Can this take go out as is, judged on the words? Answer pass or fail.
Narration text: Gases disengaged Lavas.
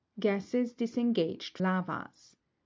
pass